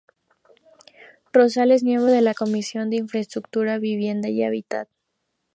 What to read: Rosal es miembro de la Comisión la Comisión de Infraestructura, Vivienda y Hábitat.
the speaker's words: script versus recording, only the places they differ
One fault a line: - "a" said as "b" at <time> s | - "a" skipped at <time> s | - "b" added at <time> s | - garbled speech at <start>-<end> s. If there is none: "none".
- "la Comisión" skipped at 2.9 s